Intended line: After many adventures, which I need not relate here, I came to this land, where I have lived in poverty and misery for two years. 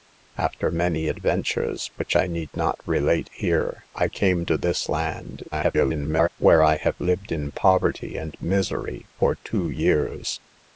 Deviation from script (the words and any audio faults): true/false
true